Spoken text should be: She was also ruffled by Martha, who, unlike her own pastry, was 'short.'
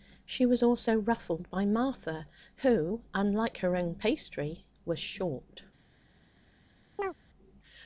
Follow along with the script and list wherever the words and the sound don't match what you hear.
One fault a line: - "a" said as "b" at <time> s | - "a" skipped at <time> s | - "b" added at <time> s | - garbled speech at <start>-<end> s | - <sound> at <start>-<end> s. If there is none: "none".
- chirp at 7.0-7.1 s